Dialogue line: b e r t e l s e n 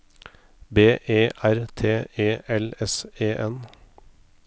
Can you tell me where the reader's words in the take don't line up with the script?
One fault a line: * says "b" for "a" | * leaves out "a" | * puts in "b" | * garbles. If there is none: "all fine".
all fine